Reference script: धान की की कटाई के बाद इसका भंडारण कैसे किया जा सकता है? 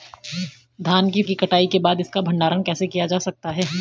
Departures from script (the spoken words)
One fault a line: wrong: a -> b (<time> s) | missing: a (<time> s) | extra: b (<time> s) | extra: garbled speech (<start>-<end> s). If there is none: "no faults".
no faults